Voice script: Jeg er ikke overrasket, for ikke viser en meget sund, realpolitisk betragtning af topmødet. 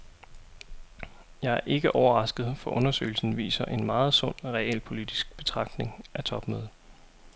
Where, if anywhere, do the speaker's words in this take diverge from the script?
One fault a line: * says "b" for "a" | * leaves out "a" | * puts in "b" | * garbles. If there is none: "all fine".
* says "undersøgelsen" for "ikke"